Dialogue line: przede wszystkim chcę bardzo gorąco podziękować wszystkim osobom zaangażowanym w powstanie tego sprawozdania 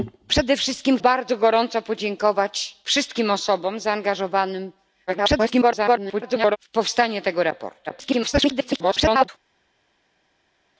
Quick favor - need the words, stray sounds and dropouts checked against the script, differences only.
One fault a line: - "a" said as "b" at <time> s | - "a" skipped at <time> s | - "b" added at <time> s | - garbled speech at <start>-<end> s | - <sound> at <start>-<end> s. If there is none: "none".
- "chcę" skipped at 1.0 s
- garbled speech at 5.1-6.6 s
- garbled speech at 7.9-9.3 s